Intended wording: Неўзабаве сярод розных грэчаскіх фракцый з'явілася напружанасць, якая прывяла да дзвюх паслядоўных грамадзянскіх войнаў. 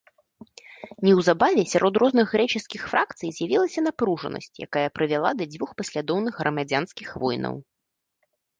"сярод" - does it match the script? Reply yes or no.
yes